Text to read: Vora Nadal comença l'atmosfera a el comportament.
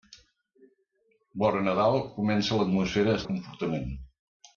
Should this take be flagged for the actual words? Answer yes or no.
no